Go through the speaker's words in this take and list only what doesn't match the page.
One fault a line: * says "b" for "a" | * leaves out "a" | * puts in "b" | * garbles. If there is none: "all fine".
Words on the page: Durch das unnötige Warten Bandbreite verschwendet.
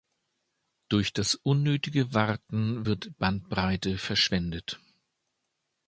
* puts in "wird"